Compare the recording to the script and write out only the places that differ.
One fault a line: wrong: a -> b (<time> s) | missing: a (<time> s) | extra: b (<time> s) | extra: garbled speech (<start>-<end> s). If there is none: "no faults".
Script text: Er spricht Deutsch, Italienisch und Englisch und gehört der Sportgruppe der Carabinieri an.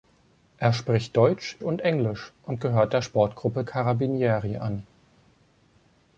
missing: Italienisch (1.6 s)
missing: der (3.6 s)